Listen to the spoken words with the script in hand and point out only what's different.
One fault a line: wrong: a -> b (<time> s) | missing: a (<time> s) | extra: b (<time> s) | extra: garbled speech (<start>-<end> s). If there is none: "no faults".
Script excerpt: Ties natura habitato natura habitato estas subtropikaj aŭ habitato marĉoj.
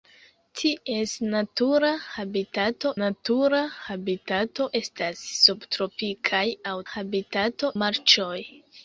no faults